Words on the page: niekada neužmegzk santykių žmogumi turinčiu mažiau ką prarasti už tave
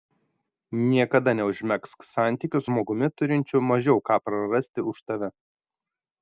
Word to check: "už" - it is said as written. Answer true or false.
true